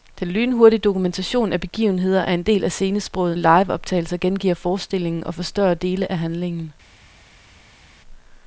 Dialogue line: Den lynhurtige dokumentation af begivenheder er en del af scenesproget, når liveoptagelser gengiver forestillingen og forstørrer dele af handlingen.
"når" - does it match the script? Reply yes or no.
no